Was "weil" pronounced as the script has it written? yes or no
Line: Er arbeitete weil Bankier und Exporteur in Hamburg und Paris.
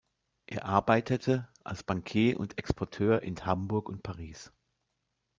no